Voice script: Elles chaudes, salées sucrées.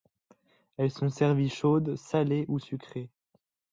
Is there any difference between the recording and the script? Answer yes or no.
yes